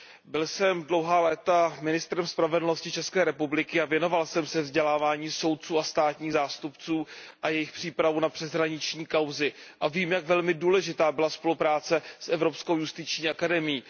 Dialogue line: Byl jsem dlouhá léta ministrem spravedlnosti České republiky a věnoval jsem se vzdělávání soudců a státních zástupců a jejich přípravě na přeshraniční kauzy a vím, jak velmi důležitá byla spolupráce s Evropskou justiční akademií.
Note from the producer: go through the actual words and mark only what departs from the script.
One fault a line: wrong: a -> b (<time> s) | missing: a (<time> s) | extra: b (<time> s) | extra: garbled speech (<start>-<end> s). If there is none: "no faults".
no faults